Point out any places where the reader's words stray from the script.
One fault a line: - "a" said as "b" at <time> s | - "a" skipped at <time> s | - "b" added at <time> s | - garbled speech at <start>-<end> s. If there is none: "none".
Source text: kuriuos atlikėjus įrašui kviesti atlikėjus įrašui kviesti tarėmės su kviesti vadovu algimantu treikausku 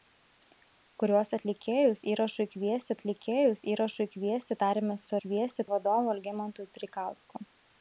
none